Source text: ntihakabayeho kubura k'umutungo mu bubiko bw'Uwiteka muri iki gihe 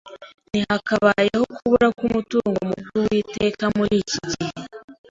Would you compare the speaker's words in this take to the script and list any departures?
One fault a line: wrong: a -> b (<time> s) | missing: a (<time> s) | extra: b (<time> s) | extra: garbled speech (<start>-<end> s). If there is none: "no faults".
missing: bubiko (2.8 s)